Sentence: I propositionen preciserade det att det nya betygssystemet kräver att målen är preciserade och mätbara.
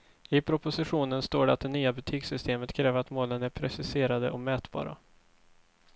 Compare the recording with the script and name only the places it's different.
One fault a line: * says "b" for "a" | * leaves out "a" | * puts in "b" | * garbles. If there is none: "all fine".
* says "står" for "preciserade"